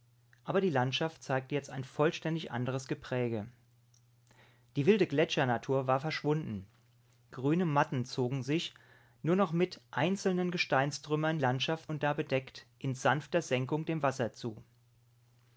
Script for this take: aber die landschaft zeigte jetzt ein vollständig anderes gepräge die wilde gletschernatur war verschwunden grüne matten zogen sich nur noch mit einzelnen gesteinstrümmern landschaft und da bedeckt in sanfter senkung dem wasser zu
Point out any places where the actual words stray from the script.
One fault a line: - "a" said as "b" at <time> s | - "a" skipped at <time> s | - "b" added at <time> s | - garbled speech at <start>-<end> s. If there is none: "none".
none